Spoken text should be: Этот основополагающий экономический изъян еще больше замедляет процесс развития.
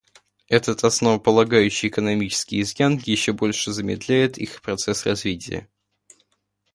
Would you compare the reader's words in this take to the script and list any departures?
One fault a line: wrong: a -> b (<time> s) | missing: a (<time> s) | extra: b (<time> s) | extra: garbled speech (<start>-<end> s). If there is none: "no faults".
extra: их (4.4 s)